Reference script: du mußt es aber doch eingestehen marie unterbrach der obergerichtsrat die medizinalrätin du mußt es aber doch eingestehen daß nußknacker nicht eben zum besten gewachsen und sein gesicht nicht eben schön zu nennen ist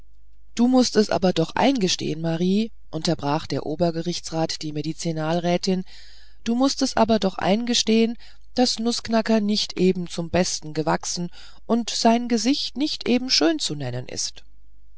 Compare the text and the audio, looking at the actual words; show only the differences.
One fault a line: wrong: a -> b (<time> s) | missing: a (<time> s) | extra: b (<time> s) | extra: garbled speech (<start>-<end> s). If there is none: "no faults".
no faults